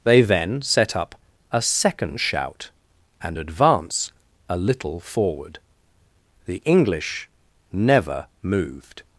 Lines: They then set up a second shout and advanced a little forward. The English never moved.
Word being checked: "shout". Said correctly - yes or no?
yes